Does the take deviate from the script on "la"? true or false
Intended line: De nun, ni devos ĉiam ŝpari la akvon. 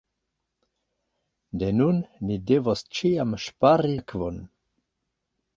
true